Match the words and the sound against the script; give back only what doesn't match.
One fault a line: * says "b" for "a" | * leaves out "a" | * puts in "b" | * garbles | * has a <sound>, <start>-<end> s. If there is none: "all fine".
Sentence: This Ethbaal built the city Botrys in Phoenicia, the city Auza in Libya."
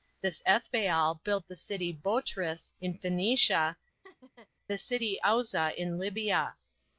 * has a laugh, 4.0-4.5 s